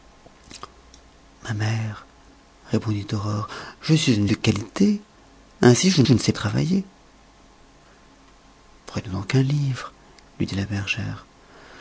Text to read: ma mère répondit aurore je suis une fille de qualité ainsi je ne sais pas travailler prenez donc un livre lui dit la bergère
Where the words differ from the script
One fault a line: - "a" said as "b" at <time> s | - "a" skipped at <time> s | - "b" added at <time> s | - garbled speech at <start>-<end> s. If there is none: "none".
- "fille" skipped at 4.3 s
- "je" added at 6.0 s
- "pas" skipped at 6.3 s